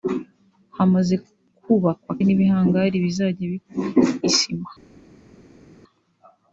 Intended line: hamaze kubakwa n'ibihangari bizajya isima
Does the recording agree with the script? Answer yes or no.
yes